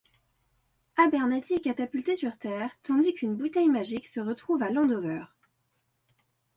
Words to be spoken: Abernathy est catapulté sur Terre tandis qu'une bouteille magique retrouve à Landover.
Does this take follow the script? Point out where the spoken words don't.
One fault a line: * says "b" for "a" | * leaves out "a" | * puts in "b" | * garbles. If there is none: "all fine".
* puts in "se"